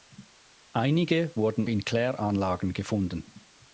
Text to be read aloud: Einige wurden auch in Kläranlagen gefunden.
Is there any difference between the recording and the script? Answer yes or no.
yes